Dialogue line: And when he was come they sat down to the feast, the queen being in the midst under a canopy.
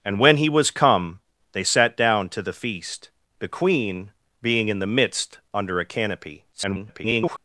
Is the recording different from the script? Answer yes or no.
yes